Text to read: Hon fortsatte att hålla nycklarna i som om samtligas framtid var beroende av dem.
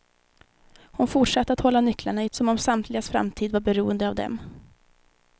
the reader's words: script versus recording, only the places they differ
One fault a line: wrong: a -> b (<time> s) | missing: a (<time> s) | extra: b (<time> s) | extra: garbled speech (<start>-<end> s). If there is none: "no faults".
no faults